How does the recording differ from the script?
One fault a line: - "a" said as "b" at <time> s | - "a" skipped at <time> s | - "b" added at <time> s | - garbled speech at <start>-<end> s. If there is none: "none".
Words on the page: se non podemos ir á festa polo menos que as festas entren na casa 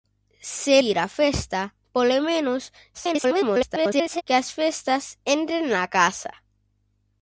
- "non podemos" skipped at 0.8 s
- garbled speech at 2.9-4.2 s